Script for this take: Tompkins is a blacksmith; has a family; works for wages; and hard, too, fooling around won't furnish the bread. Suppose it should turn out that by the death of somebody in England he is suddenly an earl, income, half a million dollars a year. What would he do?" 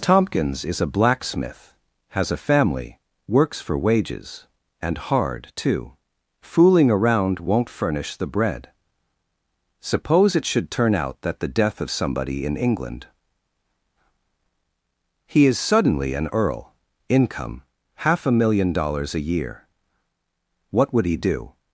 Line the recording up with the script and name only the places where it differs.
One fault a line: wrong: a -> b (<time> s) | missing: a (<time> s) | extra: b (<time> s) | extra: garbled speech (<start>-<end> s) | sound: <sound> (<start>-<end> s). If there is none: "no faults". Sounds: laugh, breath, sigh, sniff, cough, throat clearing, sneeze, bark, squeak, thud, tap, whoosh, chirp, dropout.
missing: by (11.4 s)